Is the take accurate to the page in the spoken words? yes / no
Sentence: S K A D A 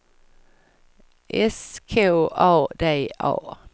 yes